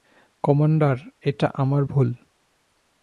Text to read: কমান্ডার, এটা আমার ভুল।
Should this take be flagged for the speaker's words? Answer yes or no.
no